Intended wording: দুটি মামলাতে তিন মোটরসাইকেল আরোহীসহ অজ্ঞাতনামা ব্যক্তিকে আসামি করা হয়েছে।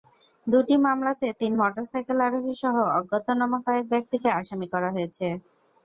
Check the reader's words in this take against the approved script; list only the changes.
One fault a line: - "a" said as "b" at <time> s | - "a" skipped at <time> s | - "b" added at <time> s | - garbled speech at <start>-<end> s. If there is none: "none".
- "কয়েক" added at 3.7 s